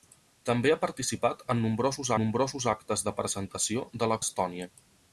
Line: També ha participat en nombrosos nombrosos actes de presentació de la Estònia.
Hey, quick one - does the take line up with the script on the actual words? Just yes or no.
yes